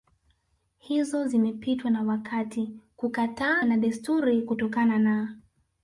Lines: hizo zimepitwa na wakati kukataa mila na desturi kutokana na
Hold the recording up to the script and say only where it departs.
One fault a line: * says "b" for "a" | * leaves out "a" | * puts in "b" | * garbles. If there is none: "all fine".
* leaves out "mila"